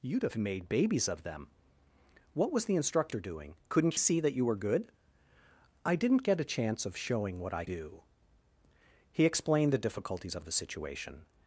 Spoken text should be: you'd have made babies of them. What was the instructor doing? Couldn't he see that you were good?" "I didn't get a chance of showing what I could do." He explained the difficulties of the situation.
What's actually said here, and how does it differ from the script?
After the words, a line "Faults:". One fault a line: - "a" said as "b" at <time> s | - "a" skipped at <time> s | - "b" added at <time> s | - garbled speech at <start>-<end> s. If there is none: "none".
you'd have made babies of them. What was the instructor doing? Couldn't see that you were good?" "I didn't get a chance of showing what I do." He explained the difficulties of the situation.
Faults:
- "he" skipped at 4.0 s
- "could" skipped at 7.6 s